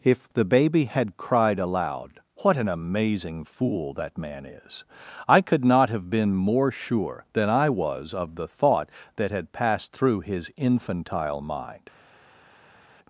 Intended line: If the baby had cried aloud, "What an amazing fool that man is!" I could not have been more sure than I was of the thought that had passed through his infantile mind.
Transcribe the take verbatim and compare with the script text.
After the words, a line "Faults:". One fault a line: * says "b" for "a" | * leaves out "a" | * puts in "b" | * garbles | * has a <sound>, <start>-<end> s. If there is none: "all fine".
If the baby had cried aloud, "What an amazing fool that man is!" I could not have been more sure than I was of the thought that had passed through his infantile mind.
Faults:
all fine